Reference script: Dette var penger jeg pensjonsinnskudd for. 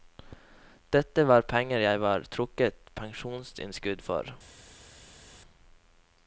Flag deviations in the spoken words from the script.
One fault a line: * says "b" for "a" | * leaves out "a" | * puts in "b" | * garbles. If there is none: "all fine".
* puts in "var trukket"